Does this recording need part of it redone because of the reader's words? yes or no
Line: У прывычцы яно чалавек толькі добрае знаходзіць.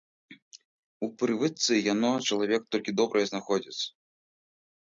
no